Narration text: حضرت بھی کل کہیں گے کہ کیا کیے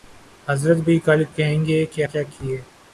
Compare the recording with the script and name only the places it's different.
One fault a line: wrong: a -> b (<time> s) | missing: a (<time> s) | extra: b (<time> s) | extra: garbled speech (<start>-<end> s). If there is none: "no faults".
no faults